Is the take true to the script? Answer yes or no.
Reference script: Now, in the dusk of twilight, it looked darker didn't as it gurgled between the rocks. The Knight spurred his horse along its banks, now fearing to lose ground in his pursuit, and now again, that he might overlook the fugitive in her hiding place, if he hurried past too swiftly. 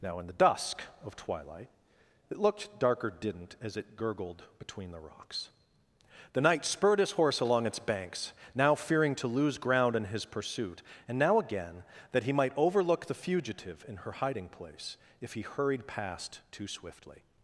yes